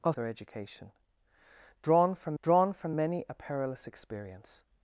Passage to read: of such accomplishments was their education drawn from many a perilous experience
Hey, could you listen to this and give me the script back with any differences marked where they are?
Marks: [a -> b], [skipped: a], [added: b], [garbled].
of [such accomplishments was their education -> their education drawn from] drawn from many a perilous experience